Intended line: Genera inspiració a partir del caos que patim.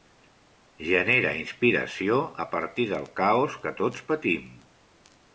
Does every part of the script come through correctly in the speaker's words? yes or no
no